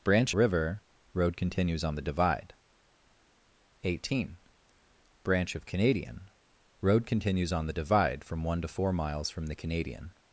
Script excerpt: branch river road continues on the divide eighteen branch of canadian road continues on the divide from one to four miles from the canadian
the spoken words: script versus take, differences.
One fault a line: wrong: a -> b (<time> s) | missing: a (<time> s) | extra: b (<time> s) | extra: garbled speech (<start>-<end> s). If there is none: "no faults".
no faults